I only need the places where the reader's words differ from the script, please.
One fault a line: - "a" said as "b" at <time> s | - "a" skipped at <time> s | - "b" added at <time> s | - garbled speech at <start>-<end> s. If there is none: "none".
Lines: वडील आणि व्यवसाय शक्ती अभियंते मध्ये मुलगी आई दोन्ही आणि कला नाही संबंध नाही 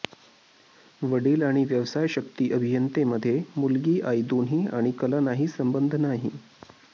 none